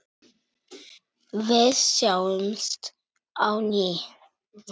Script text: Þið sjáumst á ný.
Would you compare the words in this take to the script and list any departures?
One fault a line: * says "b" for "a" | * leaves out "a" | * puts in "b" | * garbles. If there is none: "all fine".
* says "Við" for "Þið"